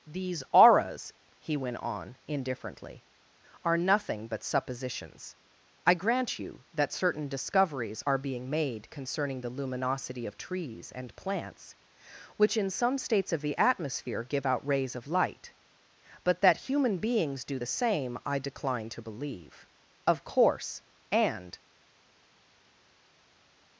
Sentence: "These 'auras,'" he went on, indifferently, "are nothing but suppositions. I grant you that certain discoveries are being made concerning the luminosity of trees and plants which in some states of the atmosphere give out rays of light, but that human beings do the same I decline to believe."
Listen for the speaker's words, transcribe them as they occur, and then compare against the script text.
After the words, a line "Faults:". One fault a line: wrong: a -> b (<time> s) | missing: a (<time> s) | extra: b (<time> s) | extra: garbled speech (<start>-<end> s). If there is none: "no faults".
"These 'auras,'" he went on, indifferently, "are nothing but suppositions. I grant you that certain discoveries are being made concerning the luminosity of trees and plants which in some states of the atmosphere give out rays of light, but that human beings do the same I decline to believe." "Of course!" and
Faults:
extra: Of course and (20.1 s)